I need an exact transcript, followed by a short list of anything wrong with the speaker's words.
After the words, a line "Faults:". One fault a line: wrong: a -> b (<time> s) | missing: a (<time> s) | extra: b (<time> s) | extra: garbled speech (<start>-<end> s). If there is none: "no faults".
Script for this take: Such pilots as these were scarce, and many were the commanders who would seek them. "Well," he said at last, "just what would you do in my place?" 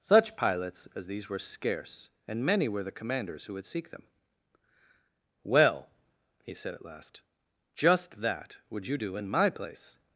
Such pilots as these were scarce, and many were the commanders who would seek them. "Well," he said at last, "just that would you do in my place?"
Faults:
wrong: what -> that (8.2 s)